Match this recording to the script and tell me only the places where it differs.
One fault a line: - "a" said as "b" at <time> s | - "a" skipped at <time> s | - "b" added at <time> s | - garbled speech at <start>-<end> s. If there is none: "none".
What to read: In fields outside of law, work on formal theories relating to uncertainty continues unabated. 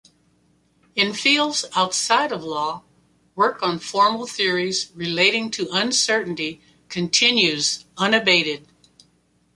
none